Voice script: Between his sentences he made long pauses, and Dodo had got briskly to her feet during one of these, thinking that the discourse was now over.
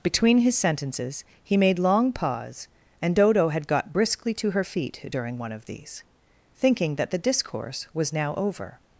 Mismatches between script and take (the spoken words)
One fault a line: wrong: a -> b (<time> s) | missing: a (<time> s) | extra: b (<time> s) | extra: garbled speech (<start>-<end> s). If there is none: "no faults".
wrong: pauses -> pause (2.1 s)